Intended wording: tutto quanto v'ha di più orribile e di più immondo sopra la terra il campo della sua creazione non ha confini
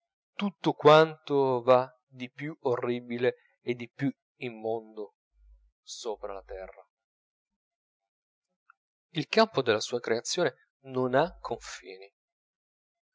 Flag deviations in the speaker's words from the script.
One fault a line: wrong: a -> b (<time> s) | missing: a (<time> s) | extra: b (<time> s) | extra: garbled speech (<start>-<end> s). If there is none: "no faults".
no faults